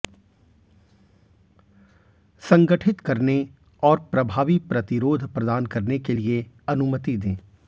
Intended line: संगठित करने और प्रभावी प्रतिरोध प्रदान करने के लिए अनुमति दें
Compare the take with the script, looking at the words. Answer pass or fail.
pass